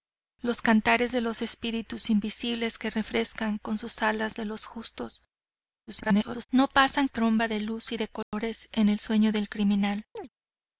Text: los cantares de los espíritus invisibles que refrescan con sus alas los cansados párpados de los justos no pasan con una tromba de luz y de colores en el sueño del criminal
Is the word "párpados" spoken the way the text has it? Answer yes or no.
no